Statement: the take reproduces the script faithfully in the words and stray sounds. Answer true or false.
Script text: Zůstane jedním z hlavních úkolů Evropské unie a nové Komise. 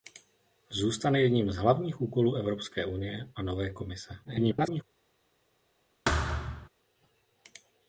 false